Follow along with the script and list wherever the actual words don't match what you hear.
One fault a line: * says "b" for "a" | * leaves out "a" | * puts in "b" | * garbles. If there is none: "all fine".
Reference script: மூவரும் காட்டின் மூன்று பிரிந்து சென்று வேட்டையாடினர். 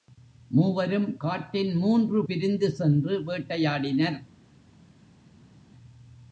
all fine